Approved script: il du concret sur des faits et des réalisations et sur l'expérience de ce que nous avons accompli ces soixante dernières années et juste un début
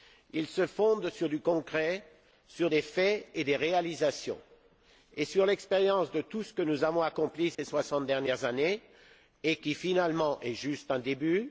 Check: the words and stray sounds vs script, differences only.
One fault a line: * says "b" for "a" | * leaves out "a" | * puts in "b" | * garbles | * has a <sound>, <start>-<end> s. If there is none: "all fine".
* puts in "se fonde sur"
* puts in "tout"
* has a dropout, 7.5-7.6 s
* puts in "qui finalement est"